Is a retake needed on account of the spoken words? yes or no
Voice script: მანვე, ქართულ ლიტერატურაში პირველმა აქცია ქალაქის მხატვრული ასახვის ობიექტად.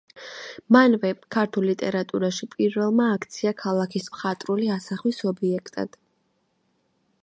no